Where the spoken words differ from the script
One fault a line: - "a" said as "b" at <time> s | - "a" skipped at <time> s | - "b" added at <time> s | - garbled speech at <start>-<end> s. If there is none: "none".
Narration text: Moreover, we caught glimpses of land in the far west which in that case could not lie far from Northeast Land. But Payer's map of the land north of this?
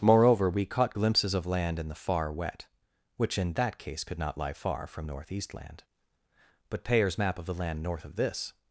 - "west" said as "wet" at 2.3 s